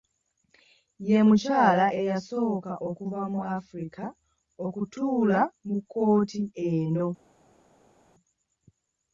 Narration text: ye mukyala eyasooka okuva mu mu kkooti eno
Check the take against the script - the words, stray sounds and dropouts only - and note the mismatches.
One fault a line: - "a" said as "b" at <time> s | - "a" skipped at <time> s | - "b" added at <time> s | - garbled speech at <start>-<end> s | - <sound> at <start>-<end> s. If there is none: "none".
- "africa okutuula" added at 3.6 s